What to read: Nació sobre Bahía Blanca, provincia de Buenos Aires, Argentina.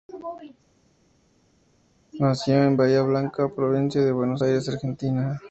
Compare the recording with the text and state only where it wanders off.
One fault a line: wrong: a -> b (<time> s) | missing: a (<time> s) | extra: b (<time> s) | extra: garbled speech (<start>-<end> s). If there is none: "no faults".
wrong: sobre -> en (2.6 s)